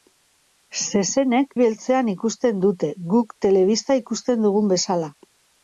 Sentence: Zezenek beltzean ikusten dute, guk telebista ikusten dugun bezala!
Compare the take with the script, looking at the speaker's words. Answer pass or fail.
pass